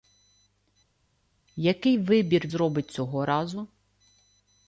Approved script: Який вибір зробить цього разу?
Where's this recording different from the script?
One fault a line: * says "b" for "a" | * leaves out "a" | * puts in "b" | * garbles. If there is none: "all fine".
all fine